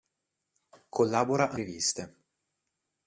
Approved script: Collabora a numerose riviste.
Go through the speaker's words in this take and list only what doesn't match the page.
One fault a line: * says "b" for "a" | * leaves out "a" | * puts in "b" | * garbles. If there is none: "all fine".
* leaves out "numerose"